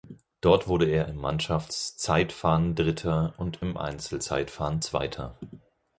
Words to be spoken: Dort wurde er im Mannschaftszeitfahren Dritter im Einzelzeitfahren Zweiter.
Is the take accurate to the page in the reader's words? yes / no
no